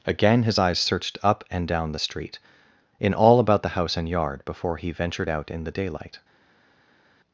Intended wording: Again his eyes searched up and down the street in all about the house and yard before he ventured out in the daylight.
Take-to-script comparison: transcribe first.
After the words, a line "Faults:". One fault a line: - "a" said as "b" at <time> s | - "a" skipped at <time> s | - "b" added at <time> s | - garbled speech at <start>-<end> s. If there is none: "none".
Again his eyes searched up and down the street in all about the house and yard before he ventured out in the daylight.
Faults:
none